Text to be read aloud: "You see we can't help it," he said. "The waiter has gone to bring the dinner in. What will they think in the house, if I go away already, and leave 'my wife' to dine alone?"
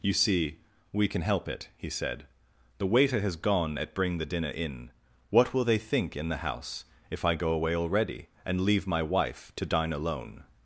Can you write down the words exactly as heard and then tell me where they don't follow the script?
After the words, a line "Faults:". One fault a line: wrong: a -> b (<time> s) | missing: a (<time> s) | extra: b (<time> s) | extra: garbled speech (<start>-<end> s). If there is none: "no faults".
"You see we can help it," he said. "The waiter has gone at bring the dinner in. What will they think in the house, if I go away already, and leave 'my wife' to dine alone?"
Faults:
wrong: can't -> can (1.1 s)
wrong: to -> at (3.8 s)